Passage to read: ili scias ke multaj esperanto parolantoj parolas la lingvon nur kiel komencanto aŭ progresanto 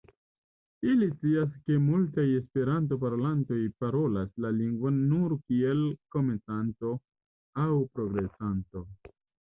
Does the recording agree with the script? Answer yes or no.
yes